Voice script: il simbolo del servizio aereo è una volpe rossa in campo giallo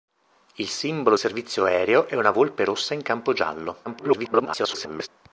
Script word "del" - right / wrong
wrong